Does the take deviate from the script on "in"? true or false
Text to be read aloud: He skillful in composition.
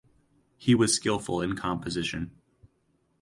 false